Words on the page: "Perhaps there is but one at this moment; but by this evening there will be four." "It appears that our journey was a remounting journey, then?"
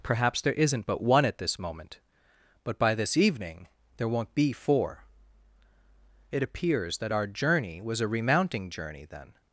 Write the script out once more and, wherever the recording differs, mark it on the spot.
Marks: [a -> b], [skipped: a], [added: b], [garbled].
"Perhaps there [is -> isn't] but one at this moment; but by this evening there [will -> won't] be four." "It appears that our journey was a remounting journey, then?"